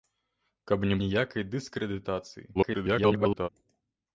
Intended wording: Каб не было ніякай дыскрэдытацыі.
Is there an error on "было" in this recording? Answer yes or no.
yes